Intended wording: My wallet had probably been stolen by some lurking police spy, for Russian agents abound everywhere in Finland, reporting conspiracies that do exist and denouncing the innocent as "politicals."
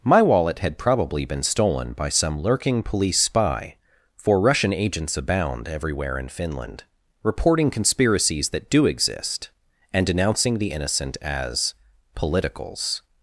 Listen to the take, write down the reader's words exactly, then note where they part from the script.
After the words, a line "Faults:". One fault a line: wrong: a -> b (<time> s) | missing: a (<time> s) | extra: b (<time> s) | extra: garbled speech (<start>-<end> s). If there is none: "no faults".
My wallet had probably been stolen by some lurking police spy, for Russian agents abound everywhere in Finland, reporting conspiracies that do exist and denouncing the innocent as "politicals."
Faults:
no faults